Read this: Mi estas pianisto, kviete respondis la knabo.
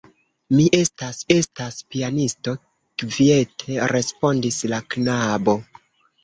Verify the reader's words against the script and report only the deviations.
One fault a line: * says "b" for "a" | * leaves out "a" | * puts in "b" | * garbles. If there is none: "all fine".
* puts in "estas"